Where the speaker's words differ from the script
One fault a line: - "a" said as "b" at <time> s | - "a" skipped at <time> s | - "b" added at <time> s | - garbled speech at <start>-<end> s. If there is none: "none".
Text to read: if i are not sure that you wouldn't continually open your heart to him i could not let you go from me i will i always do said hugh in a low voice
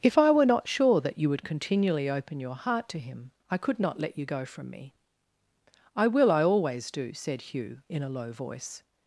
- "are" said as "were" at 0.3 s
- "wouldn't" said as "would" at 1.3 s